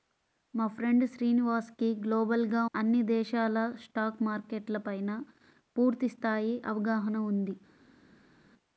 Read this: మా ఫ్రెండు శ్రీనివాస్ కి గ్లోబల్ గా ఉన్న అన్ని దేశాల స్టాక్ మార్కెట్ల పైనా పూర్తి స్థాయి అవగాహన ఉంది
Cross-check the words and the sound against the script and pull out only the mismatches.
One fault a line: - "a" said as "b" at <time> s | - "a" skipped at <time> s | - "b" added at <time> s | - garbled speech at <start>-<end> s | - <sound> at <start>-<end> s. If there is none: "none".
- "ఉన్న" skipped at 2.6 s